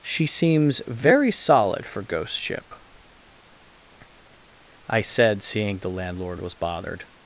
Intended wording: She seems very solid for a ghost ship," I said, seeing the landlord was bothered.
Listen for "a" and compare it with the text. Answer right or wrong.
wrong